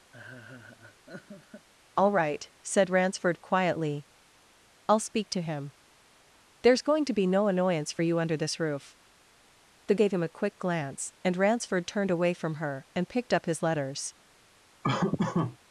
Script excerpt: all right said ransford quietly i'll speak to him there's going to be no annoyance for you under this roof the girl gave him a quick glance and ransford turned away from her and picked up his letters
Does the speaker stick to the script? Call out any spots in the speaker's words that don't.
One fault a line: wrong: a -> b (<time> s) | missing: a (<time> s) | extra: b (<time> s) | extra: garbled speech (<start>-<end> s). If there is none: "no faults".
missing: girl (9.9 s)